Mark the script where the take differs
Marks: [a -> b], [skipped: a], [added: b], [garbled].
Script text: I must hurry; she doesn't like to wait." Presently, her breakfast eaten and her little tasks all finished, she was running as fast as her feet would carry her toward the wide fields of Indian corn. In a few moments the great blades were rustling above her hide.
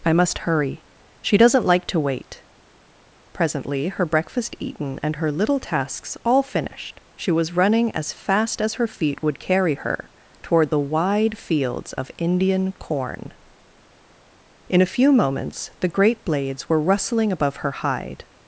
I must hurry; she doesn't like to wait." Presently, her breakfast eaten and her little tasks all finished, she was running as fast as her feet would carry her toward the wide fields of Indian corn. In a few moments the great blades were rustling above her hide.